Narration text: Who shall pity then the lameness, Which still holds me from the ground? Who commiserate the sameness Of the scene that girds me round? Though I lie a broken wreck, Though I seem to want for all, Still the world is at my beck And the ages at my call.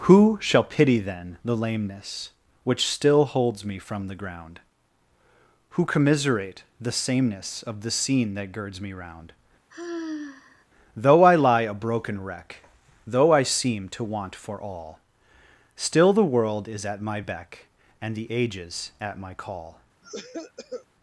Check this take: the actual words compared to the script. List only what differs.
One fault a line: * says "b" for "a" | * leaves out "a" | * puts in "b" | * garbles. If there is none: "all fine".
all fine